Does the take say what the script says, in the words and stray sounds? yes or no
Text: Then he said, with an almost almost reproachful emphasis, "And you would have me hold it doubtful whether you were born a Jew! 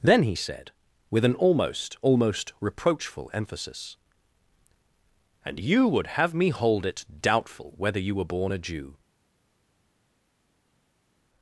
yes